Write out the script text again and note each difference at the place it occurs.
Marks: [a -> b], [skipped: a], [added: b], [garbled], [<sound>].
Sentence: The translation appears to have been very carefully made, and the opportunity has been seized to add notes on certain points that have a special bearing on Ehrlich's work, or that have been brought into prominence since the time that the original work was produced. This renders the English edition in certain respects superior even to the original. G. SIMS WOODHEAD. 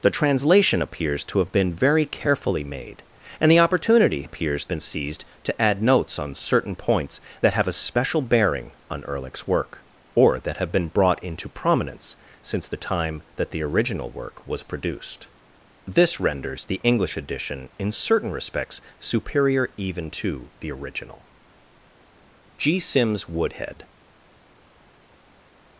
The translation appears to have been very carefully made, and the opportunity [has -> appears] been seized to add notes on certain points that have a special bearing on Ehrlich's work, or that have been brought into prominence since the time that the original work was produced. This renders the English edition in certain respects superior even to the original. G. SIMS WOODHEAD.